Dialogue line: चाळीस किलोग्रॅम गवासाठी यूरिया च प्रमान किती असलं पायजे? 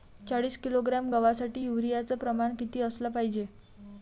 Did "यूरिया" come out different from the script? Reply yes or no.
no